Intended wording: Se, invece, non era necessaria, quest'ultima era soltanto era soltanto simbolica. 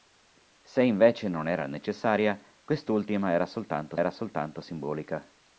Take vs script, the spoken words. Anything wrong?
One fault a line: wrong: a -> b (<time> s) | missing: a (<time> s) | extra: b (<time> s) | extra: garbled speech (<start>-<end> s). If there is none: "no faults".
no faults